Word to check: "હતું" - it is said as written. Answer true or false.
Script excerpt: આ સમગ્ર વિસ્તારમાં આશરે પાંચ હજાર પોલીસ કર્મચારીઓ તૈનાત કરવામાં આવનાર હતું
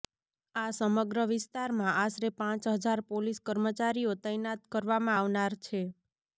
false